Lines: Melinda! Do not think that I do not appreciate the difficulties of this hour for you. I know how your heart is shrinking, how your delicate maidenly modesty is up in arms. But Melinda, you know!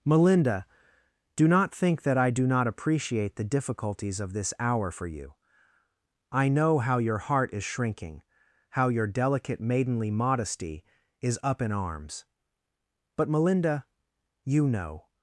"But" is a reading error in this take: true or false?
false